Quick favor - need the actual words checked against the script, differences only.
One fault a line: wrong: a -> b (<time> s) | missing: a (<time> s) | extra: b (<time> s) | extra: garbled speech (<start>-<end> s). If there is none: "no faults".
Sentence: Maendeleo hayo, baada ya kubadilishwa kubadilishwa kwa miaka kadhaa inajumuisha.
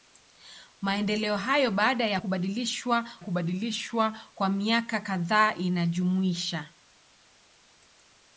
no faults